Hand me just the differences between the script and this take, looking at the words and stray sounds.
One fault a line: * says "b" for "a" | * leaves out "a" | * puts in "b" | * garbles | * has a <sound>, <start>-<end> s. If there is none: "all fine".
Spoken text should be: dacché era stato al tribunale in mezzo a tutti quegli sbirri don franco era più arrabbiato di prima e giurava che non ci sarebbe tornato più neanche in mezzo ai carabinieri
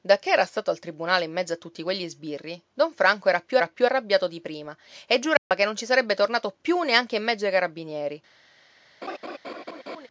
* puts in "era più"
* has a dropout, 5.4-5.5 s
* has a laugh, 9.0-10.1 s